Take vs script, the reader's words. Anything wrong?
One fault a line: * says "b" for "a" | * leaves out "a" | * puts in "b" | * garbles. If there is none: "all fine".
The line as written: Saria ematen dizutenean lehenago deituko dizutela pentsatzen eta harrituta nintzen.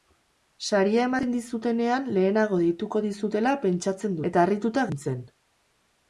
all fine